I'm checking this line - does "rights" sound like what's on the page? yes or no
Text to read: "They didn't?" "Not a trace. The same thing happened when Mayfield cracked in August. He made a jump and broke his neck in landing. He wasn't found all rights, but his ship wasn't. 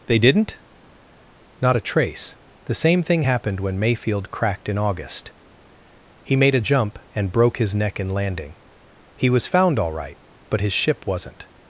no